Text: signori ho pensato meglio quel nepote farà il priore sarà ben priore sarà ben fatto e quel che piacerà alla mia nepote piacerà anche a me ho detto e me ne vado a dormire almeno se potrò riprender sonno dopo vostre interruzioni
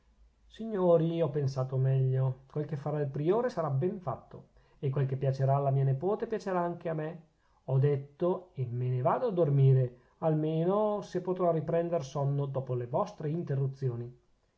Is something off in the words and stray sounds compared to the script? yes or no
yes